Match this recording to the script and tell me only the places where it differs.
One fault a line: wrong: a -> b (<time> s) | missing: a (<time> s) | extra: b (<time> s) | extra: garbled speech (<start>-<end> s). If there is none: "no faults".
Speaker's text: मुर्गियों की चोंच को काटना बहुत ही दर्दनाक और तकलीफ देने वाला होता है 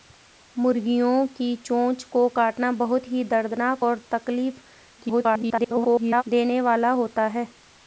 extra: garbled speech (5.0-6.2 s)